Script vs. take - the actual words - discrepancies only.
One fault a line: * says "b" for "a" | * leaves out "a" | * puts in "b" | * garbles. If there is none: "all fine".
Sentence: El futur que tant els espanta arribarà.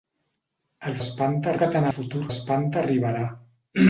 * says "espanta" for "futur"
* says "futur" for "els"